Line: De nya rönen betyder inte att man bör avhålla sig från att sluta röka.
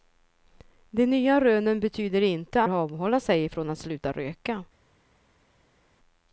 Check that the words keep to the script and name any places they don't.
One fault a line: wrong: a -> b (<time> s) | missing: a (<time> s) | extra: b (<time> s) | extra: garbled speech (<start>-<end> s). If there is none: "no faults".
missing: att man bör (2.6 s)